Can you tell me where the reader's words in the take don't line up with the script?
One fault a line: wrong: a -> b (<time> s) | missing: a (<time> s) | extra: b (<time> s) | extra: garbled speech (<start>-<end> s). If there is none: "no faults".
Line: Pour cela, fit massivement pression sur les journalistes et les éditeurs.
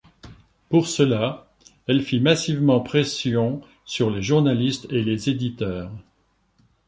extra: elle (1.9 s)